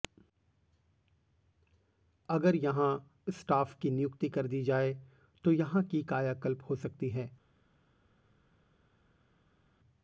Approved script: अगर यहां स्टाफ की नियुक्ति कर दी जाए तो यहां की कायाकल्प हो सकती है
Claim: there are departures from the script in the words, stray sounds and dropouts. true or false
false